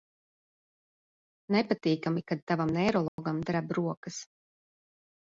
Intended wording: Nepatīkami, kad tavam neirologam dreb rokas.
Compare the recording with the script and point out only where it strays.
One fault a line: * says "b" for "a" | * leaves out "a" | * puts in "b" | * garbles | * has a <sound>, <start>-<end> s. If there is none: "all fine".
* has a dropout, 3.1-3.2 s